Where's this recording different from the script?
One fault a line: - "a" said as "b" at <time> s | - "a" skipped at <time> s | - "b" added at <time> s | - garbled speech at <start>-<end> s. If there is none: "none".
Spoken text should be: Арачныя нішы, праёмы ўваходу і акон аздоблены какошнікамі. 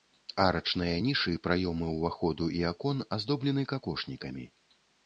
none